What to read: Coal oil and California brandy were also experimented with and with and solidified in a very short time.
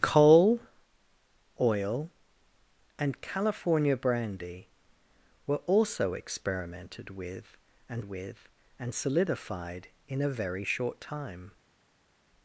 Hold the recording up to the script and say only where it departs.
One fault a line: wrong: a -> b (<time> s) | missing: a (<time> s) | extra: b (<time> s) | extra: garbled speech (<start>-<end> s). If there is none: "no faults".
no faults